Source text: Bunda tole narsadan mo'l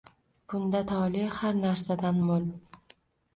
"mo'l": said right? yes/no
yes